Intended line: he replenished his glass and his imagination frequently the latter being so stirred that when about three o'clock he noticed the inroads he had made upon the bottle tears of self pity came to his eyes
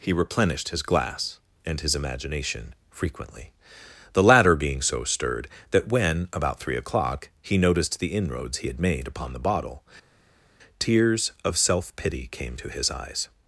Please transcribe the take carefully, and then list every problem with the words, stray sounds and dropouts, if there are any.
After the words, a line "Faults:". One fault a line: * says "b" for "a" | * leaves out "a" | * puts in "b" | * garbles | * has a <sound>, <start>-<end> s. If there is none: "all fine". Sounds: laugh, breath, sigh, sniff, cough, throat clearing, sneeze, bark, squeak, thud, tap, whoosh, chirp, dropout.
he replenished his glass and his imagination frequently the latter being so stirred that when about three o'clock he noticed the inroads he had made upon the bottle tears of self pity came to his eyes
Faults:
all fine